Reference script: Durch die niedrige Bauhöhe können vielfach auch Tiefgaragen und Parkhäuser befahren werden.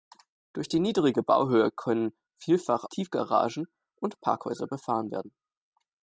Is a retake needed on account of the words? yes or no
yes